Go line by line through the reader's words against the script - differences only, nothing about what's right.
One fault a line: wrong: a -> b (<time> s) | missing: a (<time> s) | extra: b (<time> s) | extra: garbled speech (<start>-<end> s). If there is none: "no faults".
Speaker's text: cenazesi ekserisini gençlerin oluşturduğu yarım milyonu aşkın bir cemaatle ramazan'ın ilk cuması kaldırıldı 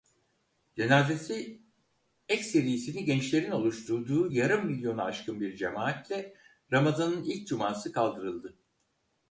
no faults